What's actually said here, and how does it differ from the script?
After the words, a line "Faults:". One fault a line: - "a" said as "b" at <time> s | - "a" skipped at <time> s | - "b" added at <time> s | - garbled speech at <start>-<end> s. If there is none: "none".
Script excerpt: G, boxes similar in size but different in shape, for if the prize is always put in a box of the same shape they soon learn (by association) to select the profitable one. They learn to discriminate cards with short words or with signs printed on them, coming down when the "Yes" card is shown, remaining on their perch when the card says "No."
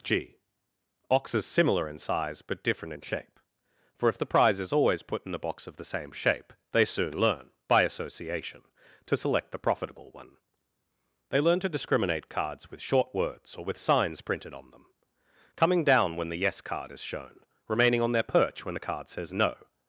G, boxes similar in size but different in shape, for if the prize is always put in a box of the same shape they soon learn (by association) to select the profitable one. They learn to discriminate cards with short words or with signs printed on them, coming down when the "Yes" card is shown, remaining on their perch when the card says "No."
Faults:
none